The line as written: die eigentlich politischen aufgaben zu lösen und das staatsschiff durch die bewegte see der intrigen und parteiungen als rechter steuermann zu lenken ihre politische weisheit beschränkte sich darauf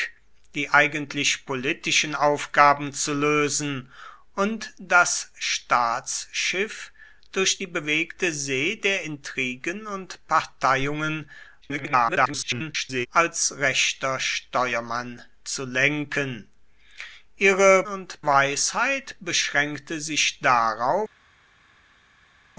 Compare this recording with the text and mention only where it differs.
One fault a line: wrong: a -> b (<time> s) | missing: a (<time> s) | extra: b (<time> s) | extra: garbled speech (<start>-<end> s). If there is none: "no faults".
extra: garbled speech (11.6-13.1 s)
wrong: politische -> und (17.9 s)